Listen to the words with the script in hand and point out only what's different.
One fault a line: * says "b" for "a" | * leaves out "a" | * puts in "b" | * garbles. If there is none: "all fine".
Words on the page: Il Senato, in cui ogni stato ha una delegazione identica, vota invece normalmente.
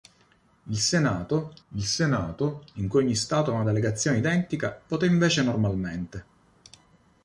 * puts in "il Senato"